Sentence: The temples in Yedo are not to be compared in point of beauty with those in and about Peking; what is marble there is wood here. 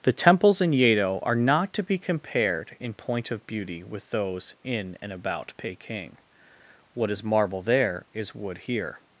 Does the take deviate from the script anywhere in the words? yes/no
no